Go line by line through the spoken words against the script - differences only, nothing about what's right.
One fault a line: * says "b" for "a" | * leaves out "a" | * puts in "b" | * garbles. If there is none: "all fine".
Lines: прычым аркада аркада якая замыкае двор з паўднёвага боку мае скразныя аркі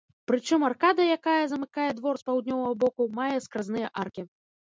* leaves out "аркада"